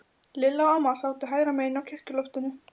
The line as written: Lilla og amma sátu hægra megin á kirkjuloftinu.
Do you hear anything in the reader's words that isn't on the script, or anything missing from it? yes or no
no